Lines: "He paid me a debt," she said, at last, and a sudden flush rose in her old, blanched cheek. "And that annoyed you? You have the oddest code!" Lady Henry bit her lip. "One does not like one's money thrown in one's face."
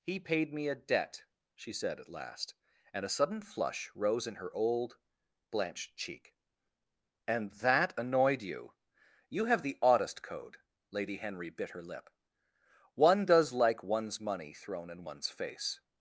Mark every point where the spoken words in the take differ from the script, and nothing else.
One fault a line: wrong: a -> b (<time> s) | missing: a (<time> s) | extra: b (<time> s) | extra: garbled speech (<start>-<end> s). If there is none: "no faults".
missing: not (13.5 s)